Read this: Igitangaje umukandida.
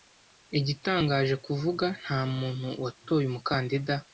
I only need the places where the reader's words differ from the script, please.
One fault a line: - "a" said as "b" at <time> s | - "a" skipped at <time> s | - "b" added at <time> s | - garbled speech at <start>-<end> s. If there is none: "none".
- "kuvuga ntamuntu watoye" added at 1.4 s